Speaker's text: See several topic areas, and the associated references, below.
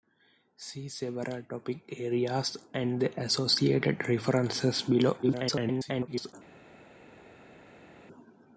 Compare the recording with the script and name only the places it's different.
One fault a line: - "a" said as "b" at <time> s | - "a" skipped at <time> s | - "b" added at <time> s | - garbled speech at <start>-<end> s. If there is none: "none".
- garbled speech at 5.2-6.3 s